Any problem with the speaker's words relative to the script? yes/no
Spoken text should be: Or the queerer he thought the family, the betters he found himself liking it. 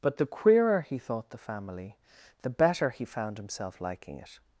yes